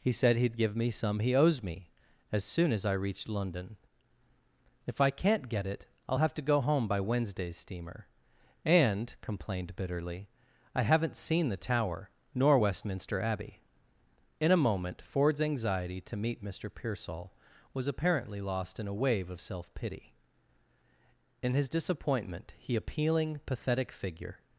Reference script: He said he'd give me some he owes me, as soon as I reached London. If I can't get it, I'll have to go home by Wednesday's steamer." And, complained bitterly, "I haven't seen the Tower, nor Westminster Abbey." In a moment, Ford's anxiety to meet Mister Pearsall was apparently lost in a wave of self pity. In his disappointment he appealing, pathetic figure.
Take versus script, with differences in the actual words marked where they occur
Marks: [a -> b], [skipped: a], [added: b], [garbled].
He said he'd give me some he owes me, as soon as I reached London. If I can't get it, I'll have to go home by Wednesday's steamer." And, complained bitterly, "I haven't seen the Tower, nor Westminster Abbey." In a moment, Ford's anxiety to meet Mister Pearsall was apparently lost in a wave of self pity. In his disappointment he appealing, pathetic figure.